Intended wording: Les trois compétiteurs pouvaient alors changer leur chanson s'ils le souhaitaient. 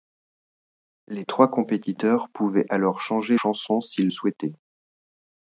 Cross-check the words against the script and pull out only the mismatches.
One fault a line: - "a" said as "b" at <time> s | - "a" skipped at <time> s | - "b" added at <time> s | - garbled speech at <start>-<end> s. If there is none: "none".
- "leur" skipped at 3.4 s
- "le" skipped at 4.1 s